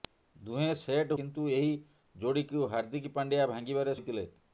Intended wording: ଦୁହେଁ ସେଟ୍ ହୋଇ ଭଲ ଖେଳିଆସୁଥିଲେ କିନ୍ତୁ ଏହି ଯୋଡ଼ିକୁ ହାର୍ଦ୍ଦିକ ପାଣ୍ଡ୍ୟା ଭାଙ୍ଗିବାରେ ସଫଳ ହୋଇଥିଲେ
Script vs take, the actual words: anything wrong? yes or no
yes